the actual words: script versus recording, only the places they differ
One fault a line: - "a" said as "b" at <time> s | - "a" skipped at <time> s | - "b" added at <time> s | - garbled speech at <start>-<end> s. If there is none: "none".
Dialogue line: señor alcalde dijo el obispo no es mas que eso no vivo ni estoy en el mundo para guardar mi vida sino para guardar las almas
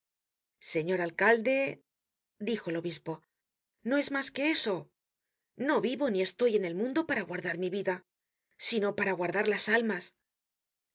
none